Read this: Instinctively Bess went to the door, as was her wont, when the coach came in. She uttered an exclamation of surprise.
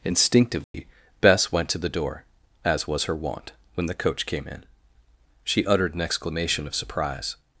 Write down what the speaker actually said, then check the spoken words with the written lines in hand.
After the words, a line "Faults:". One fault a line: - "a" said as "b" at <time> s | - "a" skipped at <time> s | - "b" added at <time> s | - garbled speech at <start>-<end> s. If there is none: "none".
Instinctively Bess went to the door, as was her wont, when the coach came in. She uttered an exclamation of surprise.
Faults:
none